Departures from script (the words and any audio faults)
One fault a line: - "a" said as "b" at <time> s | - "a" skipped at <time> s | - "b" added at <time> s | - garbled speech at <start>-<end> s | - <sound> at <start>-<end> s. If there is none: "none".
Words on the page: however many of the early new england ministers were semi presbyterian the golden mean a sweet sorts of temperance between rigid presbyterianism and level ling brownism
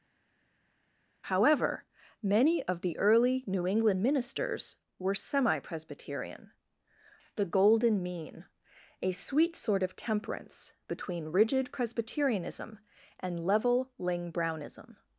- "sorts" said as "sort" at 9.6 s